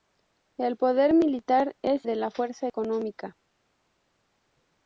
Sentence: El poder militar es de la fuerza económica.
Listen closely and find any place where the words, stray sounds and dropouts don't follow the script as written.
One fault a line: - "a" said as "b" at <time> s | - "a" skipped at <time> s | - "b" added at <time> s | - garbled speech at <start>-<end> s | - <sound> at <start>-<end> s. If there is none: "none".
none